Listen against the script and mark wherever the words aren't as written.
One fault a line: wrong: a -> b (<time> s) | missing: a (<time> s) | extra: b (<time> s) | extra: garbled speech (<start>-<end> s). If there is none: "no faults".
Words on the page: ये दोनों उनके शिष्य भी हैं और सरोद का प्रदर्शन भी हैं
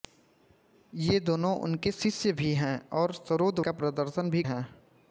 no faults